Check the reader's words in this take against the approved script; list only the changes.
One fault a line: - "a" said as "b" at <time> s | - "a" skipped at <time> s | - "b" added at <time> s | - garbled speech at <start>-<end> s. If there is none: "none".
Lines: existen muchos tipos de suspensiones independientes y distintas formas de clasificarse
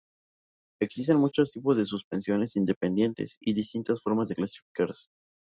none